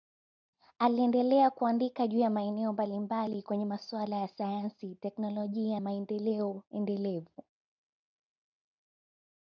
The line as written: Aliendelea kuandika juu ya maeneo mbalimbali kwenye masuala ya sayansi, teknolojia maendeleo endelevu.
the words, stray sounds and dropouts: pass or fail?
pass